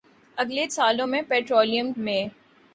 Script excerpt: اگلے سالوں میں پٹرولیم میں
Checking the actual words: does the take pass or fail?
pass